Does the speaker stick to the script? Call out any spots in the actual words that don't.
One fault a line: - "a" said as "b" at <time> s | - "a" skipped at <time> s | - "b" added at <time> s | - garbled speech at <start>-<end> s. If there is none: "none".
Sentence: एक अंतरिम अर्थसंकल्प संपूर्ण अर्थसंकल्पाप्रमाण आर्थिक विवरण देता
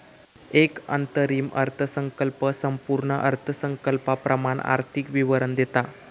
none